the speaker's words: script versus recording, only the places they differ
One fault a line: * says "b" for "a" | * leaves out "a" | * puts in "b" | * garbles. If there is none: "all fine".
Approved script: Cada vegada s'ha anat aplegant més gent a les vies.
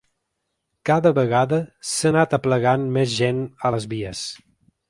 all fine